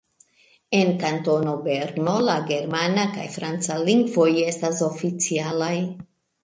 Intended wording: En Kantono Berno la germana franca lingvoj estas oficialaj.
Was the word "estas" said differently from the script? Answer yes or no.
no